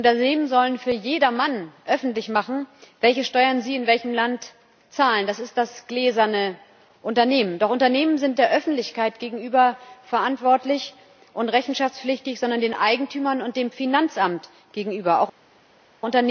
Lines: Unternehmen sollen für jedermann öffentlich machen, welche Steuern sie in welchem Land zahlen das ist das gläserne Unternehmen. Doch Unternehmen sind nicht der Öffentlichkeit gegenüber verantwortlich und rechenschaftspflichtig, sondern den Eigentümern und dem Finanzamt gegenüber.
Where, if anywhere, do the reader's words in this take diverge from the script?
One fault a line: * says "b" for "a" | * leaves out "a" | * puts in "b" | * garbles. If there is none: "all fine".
* leaves out "nicht"